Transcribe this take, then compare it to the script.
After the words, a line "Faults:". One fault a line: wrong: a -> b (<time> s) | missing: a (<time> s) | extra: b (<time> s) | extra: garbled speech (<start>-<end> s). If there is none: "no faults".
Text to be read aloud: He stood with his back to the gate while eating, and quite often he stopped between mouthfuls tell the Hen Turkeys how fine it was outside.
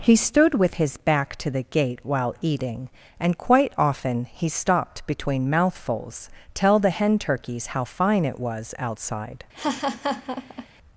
He stood with his back to the gate while eating, and quite often he stopped between mouthfuls tell the Hen Turkeys how fine it was outside.
Faults:
no faults